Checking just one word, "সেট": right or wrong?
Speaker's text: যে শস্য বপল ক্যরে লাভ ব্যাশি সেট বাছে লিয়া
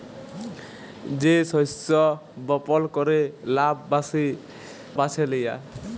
wrong